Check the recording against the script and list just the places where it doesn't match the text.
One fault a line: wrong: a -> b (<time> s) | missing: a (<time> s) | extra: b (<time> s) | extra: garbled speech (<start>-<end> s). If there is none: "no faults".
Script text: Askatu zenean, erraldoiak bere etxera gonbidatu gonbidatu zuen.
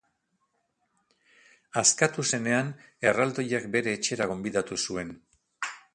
missing: gonbidatu (4.8 s)